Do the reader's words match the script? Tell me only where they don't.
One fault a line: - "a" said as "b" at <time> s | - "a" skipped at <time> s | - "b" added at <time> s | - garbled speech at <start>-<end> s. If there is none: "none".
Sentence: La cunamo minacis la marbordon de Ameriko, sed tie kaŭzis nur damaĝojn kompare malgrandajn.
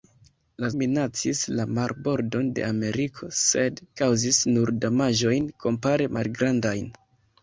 - "cunamo" skipped at 0.7 s
- "tie" skipped at 3.8 s